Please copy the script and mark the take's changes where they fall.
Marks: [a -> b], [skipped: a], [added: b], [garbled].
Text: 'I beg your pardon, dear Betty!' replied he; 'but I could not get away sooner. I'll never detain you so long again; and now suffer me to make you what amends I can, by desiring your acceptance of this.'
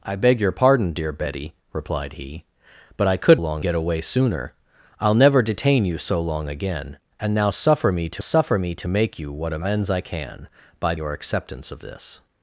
'I beg your pardon, dear Betty!' replied he; 'but I could [not -> long] get away sooner. I'll never detain you so long again; and now suffer me to [added: suffer me to] make you what amends I can, by [skipped: desiring] your acceptance of this.'